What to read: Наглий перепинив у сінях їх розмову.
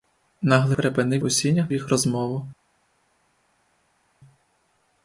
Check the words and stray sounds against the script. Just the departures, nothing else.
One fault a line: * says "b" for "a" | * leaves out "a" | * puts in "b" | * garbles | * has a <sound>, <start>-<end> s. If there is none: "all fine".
all fine